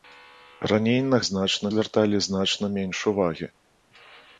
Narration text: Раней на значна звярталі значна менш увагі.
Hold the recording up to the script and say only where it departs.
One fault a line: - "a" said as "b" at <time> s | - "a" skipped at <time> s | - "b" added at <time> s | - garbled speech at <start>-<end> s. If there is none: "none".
none